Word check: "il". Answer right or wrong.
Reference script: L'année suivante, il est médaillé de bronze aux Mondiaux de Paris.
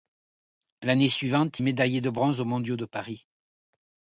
wrong